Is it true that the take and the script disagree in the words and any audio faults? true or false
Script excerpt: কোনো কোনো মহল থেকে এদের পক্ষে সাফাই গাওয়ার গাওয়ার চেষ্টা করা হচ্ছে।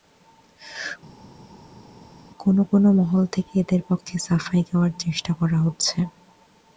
true